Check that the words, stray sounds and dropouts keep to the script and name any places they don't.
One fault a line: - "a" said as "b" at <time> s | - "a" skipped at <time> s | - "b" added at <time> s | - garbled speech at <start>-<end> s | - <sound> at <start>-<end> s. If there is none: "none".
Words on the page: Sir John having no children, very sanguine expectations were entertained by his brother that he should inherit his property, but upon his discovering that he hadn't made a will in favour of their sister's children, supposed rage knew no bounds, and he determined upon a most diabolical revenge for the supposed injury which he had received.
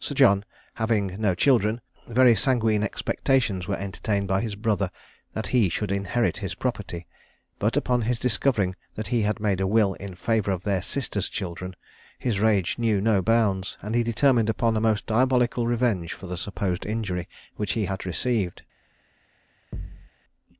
- "hadn't" said as "had" at 9.2 s
- "supposed" said as "his" at 12.2 s
- thud at 19.7-20.1 s